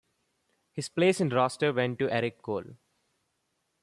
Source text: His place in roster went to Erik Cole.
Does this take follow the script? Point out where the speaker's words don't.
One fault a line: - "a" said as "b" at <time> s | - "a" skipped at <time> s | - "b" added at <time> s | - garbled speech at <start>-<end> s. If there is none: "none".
none